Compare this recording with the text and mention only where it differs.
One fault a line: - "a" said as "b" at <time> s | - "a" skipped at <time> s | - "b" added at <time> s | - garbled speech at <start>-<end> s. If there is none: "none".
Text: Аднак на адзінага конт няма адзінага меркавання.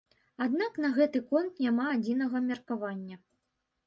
- "адзінага" said as "гэты" at 0.9 s